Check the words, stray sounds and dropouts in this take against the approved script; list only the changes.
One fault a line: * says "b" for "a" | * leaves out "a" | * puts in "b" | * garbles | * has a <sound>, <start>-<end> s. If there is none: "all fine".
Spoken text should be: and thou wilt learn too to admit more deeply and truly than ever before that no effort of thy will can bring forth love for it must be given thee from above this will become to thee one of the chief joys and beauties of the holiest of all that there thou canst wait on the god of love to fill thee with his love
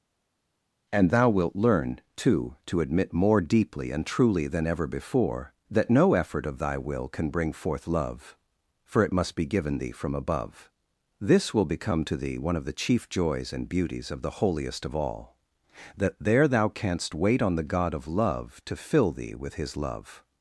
all fine